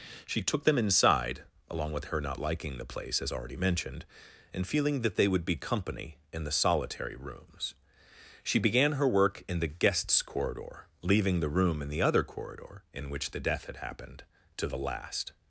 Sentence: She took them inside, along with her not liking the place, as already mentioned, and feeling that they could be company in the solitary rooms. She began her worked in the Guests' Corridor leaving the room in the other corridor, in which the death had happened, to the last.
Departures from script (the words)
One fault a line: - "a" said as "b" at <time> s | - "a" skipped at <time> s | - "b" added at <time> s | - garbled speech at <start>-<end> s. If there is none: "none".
- "could" said as "would" at 5.3 s
- "worked" said as "work" at 9.1 s